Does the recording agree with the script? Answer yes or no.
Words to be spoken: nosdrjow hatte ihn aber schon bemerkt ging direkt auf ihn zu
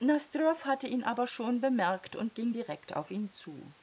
no